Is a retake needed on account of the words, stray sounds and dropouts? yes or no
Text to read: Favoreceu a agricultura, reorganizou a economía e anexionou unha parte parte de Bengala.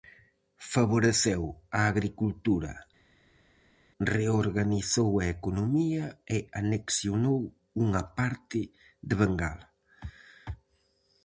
yes